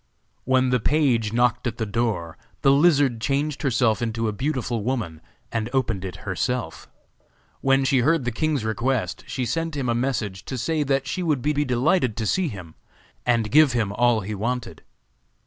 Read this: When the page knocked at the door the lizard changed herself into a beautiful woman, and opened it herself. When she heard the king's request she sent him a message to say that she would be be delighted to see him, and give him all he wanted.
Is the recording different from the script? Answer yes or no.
no